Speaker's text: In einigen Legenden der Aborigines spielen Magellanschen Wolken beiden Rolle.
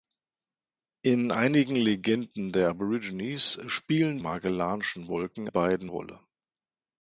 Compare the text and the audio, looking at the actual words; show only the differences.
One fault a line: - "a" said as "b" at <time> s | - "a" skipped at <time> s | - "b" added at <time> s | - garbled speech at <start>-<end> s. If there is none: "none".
none